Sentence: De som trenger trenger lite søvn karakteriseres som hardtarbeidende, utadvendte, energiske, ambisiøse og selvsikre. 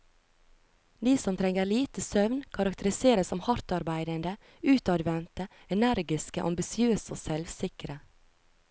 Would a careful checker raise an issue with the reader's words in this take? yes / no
yes